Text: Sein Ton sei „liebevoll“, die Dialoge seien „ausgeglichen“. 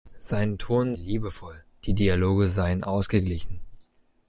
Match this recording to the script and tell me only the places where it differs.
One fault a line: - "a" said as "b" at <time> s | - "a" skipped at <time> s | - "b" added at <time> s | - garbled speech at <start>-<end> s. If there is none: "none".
- "sei" skipped at 0.9 s